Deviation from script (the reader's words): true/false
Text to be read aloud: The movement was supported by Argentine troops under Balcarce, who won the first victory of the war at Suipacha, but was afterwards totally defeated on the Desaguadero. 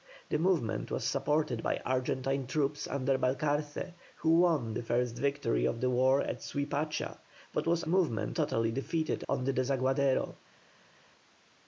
true